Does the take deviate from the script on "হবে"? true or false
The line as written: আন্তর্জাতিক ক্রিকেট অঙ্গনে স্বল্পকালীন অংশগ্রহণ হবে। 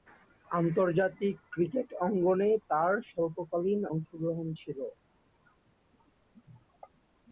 true